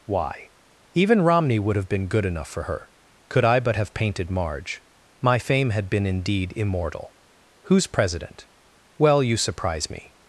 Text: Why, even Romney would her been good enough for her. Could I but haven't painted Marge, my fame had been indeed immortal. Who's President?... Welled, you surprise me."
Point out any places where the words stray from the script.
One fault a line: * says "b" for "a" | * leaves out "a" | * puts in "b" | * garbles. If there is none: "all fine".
* says "have" for "her"
* says "have" for "haven't"
* says "Well" for "Welled"